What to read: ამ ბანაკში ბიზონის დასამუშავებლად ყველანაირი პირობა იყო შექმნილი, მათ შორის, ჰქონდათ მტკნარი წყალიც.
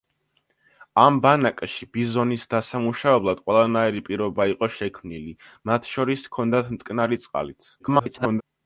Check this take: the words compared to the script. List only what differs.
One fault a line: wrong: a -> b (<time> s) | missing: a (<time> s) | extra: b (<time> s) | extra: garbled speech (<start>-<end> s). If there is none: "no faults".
extra: garbled speech (7.8-8.4 s)